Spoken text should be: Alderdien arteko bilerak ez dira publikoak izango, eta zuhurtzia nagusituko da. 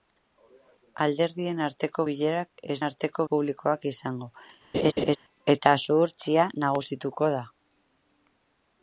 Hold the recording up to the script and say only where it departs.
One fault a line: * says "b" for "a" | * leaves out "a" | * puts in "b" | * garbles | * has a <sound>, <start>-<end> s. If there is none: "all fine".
* says "arteko" for "dira"
* has a laugh, 4.7-5.2 s